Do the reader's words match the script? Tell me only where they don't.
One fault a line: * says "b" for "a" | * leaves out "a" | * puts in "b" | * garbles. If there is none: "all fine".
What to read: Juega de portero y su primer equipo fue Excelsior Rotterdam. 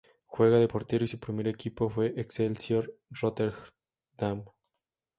all fine